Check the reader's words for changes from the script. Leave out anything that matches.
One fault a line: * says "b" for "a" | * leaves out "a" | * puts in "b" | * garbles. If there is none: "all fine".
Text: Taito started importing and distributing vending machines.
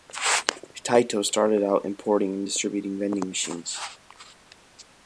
* puts in "out"